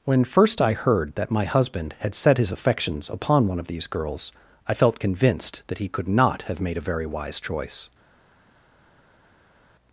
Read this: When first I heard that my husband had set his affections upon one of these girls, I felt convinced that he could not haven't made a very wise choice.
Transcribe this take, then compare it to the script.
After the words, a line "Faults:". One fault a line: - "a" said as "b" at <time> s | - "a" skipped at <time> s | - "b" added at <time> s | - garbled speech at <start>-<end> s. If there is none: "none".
When first I heard that my husband had set his affections upon one of these girls, I felt convinced that he could not have made a very wise choice.
Faults:
- "haven't" said as "have" at 6.4 s